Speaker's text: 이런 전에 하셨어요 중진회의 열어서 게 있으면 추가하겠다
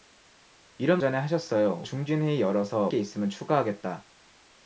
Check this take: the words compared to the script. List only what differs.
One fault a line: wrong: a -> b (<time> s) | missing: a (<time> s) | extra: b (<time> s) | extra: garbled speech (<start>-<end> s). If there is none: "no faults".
no faults